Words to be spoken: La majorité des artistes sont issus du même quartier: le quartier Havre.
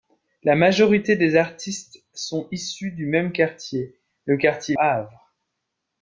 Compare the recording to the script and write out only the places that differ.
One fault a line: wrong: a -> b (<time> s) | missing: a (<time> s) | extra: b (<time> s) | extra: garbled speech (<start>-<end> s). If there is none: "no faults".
no faults